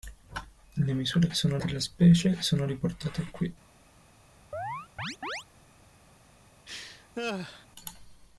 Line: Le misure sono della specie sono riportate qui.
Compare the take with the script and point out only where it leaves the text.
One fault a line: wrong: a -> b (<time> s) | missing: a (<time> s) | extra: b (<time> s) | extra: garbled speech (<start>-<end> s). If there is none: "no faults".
no faults